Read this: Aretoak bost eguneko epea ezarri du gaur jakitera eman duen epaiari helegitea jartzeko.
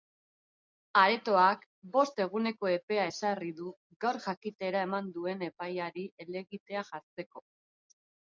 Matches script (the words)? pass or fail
pass